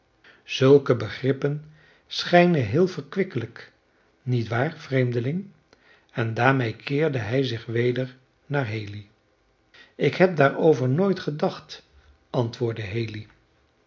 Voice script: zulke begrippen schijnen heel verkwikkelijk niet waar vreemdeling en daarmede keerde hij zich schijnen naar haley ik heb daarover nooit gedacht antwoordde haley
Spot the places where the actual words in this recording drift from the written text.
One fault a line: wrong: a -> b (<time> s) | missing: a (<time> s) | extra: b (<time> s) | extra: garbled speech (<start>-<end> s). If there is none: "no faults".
wrong: schijnen -> weder (7.7 s)